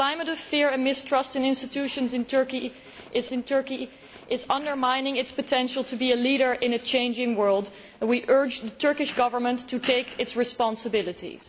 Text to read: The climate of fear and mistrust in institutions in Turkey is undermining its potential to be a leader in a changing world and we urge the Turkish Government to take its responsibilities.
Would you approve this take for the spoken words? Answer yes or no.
no